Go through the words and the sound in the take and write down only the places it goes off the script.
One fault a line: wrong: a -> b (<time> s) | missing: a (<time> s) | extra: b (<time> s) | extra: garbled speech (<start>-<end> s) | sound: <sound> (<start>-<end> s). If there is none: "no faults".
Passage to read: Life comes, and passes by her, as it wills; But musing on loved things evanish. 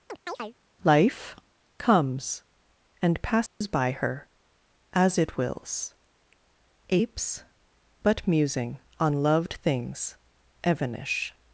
sound: chirp (0.1-0.5 s)
sound: dropout (3.5-3.6 s)
extra: apes (6.9 s)